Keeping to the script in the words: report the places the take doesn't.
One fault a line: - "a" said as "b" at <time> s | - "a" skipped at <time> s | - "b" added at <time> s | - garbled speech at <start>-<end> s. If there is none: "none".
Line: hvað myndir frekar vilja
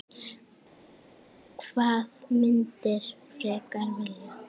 none